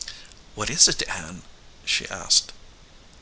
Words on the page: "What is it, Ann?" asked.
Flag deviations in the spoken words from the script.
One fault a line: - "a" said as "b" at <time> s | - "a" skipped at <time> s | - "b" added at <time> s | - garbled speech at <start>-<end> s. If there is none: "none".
- "she" added at 1.8 s